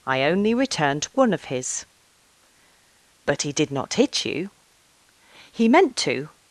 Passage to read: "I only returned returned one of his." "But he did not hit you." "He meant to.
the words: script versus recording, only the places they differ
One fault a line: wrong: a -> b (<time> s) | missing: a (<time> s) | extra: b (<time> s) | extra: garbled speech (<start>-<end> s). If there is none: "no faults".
missing: returned (1.1 s)